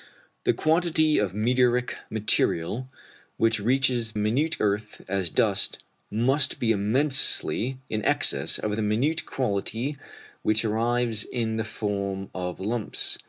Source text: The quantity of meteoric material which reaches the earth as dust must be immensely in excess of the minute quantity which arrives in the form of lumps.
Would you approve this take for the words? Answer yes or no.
no